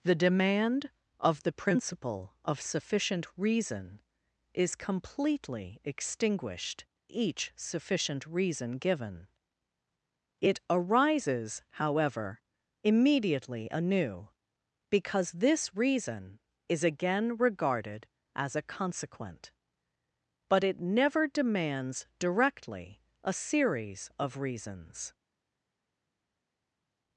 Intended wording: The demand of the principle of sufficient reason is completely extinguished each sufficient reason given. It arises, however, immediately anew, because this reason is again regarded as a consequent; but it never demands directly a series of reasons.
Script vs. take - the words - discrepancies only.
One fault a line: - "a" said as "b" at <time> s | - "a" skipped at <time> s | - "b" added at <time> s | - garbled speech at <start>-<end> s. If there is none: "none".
none